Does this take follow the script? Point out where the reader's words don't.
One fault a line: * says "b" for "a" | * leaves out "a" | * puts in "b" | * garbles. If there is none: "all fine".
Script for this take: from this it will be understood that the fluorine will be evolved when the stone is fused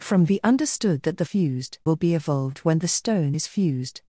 * leaves out "this it will"
* says "fused" for "fluorine"